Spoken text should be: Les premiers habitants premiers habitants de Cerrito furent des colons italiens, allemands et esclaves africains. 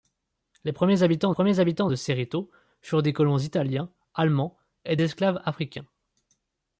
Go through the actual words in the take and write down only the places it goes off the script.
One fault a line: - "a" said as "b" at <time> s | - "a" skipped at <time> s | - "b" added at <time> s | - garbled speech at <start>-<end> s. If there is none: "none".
none